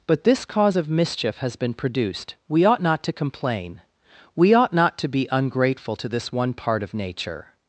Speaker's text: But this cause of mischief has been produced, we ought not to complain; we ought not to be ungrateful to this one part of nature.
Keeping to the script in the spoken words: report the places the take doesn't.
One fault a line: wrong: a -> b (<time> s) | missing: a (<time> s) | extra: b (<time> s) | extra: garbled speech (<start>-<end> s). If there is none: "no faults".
no faults